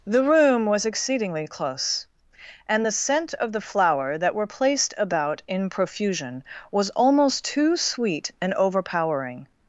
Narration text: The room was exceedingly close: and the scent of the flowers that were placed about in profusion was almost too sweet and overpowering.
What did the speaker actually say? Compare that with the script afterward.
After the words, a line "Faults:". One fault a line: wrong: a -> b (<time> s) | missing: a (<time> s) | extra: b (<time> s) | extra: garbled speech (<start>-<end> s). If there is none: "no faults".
The room was exceedingly close: and the scent of the flower that were placed about in profusion was almost too sweet and overpowering.
Faults:
wrong: flowers -> flower (3.6 s)